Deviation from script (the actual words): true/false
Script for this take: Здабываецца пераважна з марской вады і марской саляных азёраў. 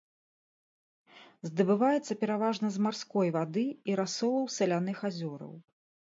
true